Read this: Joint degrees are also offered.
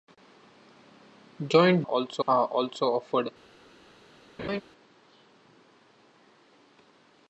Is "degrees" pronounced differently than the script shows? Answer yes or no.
yes